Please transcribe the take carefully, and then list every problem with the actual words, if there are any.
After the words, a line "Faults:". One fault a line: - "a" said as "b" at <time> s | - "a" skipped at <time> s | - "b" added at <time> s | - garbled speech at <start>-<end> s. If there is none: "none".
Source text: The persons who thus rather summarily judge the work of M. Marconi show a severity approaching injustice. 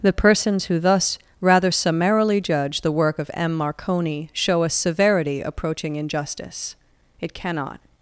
The persons who thus rather summarily judge the work of M. Marconi show a severity approaching injustice. It cannot
Faults:
- "It cannot" added at 7.2 s